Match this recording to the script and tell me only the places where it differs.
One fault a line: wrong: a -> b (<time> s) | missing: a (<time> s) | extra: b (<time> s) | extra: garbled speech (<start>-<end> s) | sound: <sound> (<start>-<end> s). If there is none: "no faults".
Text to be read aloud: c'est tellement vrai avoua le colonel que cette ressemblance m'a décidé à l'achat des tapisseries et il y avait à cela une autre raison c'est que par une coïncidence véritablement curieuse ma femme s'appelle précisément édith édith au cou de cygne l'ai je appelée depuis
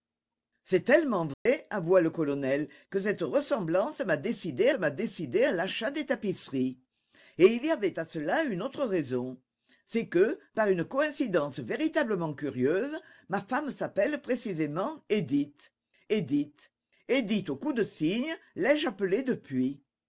sound: dropout (1.3-1.5 s)
extra: m'a décidé (4.7 s)
extra: édith (17.1 s)